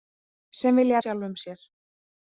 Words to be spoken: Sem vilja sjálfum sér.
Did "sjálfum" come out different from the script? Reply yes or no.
no